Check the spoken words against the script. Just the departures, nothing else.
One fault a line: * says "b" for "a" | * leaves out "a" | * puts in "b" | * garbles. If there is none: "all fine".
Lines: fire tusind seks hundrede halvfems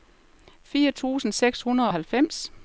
all fine